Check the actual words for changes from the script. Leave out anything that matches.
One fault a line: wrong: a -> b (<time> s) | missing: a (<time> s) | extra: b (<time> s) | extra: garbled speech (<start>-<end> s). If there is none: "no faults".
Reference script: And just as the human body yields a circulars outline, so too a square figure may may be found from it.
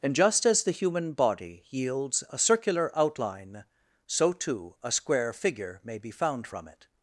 wrong: circulars -> circular (2.4 s)
missing: may (6.0 s)